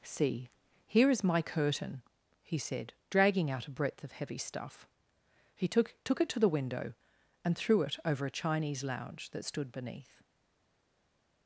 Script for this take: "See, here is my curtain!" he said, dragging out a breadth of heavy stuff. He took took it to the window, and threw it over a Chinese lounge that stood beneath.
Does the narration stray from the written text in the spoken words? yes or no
no